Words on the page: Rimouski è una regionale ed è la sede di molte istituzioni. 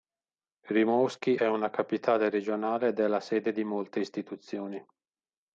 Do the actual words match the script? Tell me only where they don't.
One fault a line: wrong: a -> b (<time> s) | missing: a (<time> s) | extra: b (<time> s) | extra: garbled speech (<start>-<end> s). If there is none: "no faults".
extra: capitale (1.7 s)